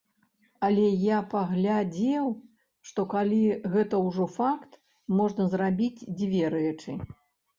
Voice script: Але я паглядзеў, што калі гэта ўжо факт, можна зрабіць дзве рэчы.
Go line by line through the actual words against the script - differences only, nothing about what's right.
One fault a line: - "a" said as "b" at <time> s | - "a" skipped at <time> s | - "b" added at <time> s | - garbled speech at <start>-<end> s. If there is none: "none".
none